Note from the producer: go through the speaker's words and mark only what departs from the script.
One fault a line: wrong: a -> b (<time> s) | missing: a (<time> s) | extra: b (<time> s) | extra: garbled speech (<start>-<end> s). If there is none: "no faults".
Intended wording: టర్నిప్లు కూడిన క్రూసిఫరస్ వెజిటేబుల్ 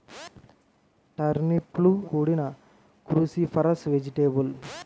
no faults